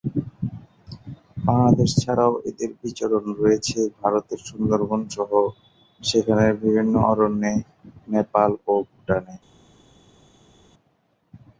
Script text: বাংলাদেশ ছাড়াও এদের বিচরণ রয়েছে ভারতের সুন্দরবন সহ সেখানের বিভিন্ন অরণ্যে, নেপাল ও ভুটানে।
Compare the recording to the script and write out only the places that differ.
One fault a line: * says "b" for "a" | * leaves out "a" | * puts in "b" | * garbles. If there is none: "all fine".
all fine